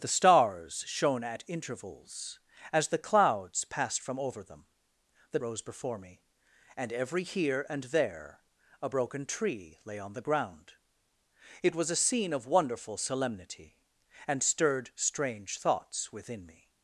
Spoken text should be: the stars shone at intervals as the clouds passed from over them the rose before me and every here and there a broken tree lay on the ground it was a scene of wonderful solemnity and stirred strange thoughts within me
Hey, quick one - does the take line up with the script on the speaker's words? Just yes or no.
yes